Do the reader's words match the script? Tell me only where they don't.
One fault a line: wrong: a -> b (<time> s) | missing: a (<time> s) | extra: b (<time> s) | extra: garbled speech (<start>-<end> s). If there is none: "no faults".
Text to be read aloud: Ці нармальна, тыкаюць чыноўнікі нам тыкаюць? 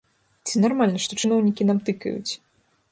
wrong: тыкаюць -> што (1.0 s)